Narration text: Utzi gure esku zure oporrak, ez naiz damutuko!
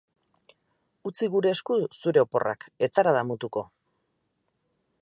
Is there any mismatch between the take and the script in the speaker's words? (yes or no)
yes